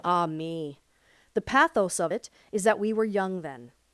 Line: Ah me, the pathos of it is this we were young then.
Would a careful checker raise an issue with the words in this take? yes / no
yes